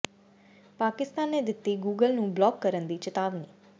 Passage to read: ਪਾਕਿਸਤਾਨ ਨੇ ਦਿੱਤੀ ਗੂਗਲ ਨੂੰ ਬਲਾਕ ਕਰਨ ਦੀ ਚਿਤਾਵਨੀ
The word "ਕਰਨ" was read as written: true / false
true